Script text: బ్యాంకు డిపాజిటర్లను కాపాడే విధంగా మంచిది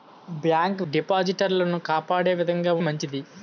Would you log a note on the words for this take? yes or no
no